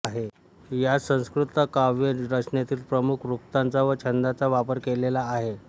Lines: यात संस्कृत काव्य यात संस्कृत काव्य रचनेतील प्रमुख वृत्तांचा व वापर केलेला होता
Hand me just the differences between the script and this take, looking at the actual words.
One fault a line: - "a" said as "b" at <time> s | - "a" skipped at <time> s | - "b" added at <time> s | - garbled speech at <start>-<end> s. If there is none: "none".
- "यात संस्कृत काव्य" skipped at 2.1 s
- "छंदांचा" added at 4.0 s
- "होता" said as "आहे" at 5.3 s